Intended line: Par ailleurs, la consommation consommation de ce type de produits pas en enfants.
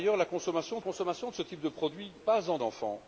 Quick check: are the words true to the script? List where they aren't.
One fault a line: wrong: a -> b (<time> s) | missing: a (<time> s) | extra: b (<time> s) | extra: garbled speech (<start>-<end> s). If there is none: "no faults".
no faults